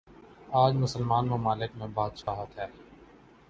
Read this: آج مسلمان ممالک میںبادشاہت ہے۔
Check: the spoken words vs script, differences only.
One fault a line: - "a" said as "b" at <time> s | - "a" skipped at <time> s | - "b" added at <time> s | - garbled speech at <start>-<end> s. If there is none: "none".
none